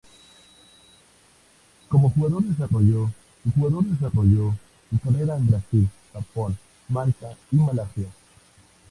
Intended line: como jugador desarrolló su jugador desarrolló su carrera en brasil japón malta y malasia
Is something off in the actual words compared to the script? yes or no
no